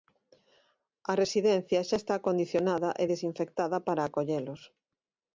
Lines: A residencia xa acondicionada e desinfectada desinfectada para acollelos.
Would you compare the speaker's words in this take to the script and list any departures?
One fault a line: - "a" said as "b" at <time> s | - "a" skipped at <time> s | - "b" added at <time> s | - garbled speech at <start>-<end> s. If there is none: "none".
- "está" added at 2.0 s
- "desinfectada" skipped at 3.8 s